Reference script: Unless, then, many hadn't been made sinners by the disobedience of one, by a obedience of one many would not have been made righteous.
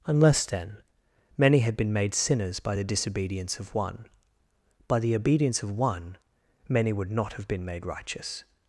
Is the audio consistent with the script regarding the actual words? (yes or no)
no